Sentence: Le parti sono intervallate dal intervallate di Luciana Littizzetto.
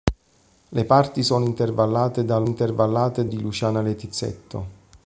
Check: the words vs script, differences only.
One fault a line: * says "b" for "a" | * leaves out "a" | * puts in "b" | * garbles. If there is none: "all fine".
all fine